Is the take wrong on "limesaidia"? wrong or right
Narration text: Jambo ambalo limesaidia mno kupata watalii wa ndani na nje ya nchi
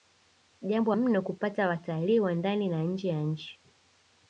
wrong